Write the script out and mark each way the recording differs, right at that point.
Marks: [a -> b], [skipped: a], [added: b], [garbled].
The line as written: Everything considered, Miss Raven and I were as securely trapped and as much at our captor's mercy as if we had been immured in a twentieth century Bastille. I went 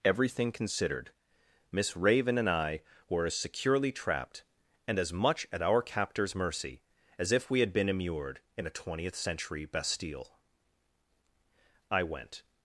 Everything considered, Miss Raven and I were as securely trapped and as much at our captor's mercy as if we had been immured in a twentieth century Bastille. I went